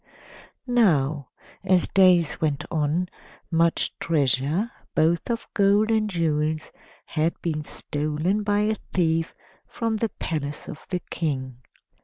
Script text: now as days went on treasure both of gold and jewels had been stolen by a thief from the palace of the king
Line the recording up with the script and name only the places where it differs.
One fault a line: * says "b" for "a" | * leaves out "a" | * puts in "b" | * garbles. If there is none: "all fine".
* puts in "much"